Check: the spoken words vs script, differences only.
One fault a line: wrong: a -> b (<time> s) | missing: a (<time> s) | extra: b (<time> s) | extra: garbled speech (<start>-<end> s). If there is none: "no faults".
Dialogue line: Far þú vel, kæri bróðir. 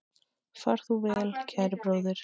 no faults